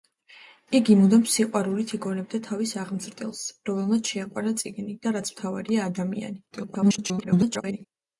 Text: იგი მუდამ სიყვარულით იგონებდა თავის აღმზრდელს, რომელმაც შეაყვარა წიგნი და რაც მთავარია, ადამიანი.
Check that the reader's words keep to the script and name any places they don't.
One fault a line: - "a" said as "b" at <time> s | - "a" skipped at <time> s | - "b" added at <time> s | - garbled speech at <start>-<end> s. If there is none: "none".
- garbled speech at 6.5-7.8 s